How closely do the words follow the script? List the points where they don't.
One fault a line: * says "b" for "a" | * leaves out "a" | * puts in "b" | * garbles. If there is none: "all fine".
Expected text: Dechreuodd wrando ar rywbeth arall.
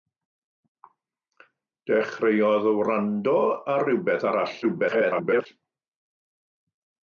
* garbles